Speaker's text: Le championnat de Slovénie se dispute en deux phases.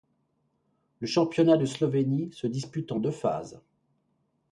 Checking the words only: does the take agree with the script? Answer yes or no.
yes